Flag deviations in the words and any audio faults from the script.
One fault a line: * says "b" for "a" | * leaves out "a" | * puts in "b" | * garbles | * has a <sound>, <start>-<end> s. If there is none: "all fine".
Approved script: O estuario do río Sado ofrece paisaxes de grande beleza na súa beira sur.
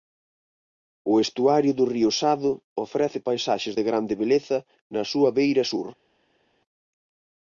all fine